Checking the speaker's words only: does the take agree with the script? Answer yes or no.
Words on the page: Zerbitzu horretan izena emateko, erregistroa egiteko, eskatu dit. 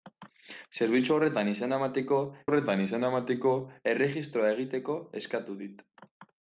no